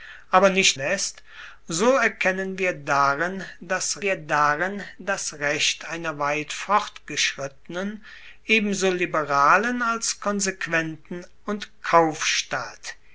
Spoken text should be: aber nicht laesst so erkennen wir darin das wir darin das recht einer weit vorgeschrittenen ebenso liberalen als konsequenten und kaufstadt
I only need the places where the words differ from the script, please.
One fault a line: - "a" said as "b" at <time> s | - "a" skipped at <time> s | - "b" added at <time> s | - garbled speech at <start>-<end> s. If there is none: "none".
none